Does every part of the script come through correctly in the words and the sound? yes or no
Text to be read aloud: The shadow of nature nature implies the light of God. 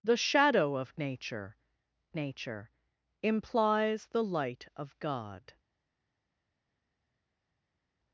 yes